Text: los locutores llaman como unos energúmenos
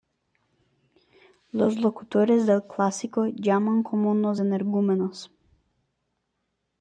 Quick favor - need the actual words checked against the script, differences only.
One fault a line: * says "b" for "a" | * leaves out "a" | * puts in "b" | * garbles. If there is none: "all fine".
* puts in "del clásico"